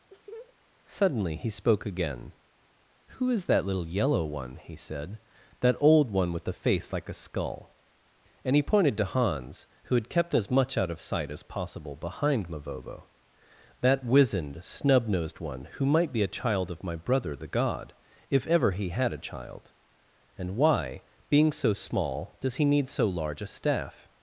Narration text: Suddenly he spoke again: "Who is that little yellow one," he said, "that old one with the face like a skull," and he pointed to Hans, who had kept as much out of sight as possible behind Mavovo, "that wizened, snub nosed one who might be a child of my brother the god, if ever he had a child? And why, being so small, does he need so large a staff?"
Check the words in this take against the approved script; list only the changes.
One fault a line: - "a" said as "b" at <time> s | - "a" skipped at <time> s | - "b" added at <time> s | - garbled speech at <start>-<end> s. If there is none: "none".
none